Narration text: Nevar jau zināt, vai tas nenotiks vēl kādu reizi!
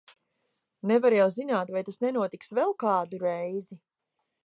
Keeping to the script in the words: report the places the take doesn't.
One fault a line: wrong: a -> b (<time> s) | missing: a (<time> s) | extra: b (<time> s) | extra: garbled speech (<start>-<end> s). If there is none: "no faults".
no faults